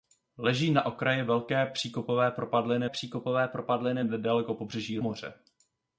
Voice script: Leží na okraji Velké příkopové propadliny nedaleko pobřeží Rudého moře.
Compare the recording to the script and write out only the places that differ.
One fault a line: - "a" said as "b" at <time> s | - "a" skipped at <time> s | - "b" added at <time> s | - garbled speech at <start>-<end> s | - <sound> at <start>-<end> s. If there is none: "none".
- "příkopové propadliny" added at 2.8 s
- "Rudého" skipped at 5.0 s